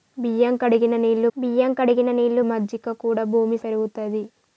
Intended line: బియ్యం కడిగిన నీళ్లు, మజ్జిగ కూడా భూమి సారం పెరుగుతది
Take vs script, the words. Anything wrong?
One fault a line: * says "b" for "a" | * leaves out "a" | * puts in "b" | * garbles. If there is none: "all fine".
* puts in "బియ్యం కడిగిన నీళ్లు"
* leaves out "సారం"